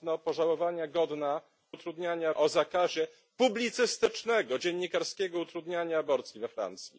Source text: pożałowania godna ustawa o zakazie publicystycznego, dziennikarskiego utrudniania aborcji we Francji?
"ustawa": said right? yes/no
no